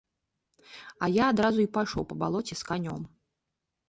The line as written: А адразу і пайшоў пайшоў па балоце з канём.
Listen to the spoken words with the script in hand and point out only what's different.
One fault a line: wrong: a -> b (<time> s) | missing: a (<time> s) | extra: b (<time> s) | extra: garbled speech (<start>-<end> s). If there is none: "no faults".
extra: я (1.1 s)
missing: пайшоў (2.1 s)